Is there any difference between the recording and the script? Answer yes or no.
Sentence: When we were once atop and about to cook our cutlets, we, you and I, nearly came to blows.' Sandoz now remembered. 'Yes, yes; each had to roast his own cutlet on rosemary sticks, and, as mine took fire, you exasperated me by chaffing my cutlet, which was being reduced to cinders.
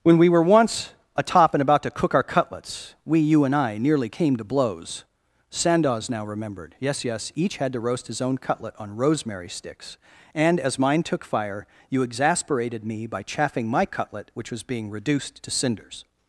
no